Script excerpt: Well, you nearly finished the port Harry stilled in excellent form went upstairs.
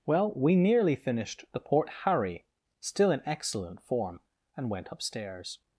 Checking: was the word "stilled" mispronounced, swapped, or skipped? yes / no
yes